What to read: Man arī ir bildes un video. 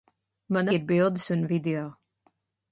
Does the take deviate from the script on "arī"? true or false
true